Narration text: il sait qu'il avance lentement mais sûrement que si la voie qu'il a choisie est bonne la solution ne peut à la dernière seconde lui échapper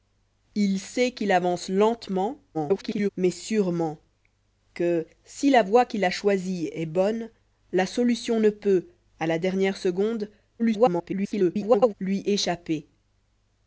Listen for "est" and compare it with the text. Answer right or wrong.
right